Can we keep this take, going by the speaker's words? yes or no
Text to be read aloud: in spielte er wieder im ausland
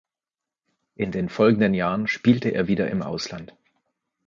no